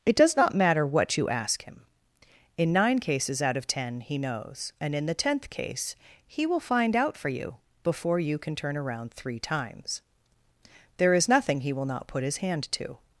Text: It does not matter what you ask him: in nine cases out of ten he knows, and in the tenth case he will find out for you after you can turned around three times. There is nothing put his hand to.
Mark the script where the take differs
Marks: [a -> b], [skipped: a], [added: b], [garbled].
It does not matter what you ask him: in nine cases out of ten he knows, and in the tenth case he will find out for you [after -> before] you can [turned -> turn] around three times. There is nothing [added: he will not] put his hand to.